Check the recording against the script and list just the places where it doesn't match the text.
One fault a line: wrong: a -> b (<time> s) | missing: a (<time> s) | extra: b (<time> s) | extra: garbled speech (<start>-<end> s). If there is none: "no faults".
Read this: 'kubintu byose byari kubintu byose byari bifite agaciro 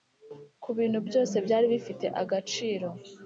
missing: kubintu byose byari (1.6 s)